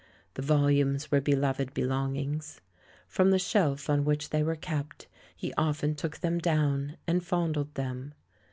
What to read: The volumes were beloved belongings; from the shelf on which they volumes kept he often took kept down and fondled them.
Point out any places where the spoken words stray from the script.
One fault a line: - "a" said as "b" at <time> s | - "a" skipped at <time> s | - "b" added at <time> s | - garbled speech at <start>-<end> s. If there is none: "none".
- "volumes" said as "were" at 4.4 s
- "kept" said as "them" at 6.2 s